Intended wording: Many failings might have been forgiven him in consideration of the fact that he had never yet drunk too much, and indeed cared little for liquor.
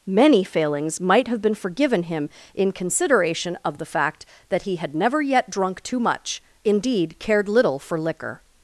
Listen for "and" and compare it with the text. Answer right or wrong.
wrong